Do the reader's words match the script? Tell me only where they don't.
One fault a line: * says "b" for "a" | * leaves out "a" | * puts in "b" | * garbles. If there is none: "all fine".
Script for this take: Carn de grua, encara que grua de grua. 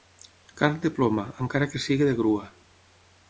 * says "ploma" for "grua"
* says "sigui" for "grua"